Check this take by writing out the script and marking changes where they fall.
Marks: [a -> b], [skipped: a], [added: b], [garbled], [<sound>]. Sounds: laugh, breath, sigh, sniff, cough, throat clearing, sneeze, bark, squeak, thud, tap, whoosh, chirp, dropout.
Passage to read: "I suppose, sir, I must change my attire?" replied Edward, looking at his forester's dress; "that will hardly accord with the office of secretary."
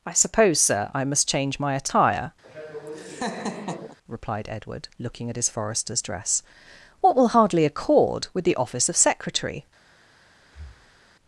"I suppose, sir, I must change my attire?" [laugh] replied Edward, looking at his forester's dress; ["that -> what] will hardly accord with the office of secretary." [breath]